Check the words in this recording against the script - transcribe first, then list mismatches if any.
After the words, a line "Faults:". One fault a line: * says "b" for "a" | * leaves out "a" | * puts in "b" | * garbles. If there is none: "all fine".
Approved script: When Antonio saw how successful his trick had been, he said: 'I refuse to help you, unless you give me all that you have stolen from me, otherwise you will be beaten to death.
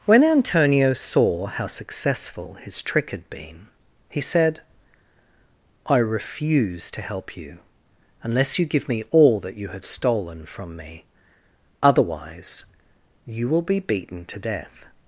When Antonio saw how successful his trick had been, he said: 'I refuse to help you, unless you give me all that you have stolen from me, otherwise you will be beaten to death.
Faults:
all fine